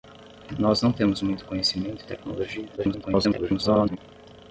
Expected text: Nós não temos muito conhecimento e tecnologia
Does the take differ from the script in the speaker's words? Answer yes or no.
yes